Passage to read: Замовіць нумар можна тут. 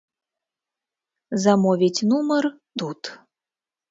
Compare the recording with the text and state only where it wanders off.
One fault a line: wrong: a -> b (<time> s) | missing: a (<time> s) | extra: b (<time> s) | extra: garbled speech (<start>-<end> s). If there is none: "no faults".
missing: можна (2.5 s)